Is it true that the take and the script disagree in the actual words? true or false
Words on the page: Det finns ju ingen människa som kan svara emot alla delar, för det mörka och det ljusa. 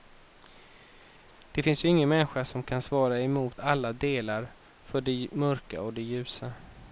false